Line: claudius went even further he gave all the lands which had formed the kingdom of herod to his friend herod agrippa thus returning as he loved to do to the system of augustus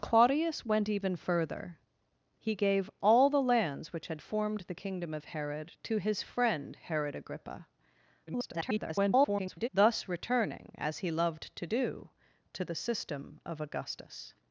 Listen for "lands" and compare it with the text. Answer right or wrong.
right